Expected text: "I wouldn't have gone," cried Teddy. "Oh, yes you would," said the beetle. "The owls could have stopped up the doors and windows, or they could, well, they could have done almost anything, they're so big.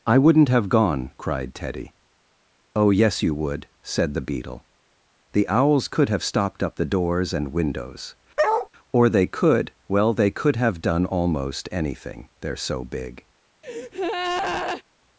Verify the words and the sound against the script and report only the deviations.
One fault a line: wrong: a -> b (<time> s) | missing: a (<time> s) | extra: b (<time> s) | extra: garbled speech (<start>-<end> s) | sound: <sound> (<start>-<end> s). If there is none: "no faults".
sound: bark (8.4-8.7 s)
sound: breath (13.6-14.8 s)